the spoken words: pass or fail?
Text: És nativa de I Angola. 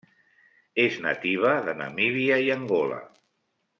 fail